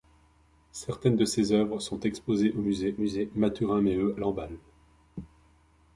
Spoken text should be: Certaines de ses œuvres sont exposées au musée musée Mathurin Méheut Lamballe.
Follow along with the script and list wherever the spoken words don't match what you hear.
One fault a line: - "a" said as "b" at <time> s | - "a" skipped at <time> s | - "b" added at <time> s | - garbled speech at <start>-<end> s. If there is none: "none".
none